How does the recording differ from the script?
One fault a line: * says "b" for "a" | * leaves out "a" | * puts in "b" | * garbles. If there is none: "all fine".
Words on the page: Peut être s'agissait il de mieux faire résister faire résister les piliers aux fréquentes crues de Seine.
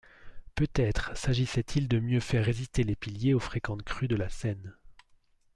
* leaves out "faire résister"
* puts in "la"